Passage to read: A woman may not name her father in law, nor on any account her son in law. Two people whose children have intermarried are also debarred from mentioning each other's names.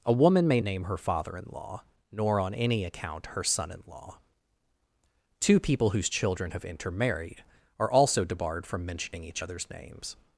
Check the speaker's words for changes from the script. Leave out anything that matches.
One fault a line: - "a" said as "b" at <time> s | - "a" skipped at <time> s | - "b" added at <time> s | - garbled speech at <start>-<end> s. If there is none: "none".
- "not" skipped at 0.6 s